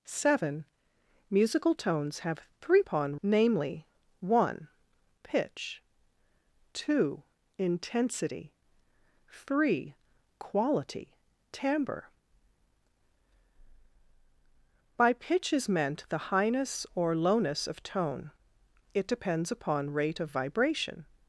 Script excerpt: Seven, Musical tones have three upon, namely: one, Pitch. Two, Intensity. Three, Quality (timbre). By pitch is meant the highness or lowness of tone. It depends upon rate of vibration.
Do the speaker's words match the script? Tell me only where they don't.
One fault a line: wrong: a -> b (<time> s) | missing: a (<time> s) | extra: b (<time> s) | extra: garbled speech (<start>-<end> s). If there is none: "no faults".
no faults